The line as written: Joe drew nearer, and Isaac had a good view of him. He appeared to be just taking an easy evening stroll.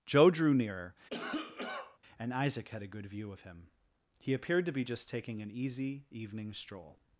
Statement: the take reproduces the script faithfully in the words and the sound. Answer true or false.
false